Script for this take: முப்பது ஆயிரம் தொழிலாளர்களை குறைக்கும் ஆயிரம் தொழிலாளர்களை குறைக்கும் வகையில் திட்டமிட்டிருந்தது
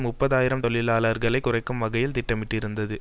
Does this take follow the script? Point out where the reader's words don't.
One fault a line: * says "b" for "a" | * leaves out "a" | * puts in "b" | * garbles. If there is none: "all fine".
* leaves out "ஆயிரம் தொழிலாளர்களை குறைக்கும்"